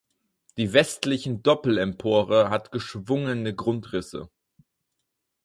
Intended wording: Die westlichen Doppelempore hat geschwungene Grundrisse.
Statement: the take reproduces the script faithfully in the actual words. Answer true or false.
true